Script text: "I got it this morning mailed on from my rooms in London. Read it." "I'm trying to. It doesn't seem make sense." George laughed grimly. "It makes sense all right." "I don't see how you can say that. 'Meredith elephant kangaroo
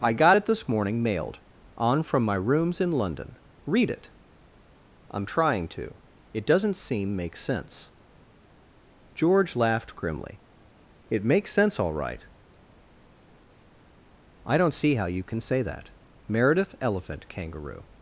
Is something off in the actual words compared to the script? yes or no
no